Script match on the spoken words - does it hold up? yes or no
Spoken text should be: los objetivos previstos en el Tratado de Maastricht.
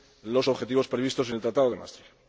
yes